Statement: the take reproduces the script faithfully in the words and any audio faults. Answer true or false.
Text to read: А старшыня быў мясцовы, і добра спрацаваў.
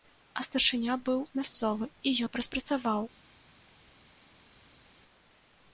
true